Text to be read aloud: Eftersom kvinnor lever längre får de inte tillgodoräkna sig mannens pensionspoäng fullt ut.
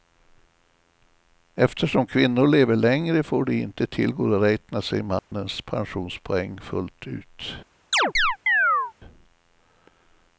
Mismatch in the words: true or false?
false